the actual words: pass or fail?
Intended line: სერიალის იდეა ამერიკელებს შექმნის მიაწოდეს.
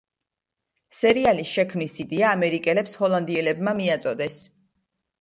fail